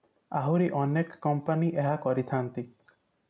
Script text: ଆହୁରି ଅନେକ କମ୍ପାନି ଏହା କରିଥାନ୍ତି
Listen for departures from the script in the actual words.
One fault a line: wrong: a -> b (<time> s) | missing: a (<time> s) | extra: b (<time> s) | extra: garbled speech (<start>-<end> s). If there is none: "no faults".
no faults